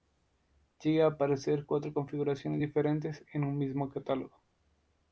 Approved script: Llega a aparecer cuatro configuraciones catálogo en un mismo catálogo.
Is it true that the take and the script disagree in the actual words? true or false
true